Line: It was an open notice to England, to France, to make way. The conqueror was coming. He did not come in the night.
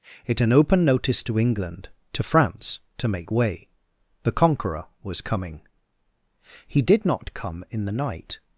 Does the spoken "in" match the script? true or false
true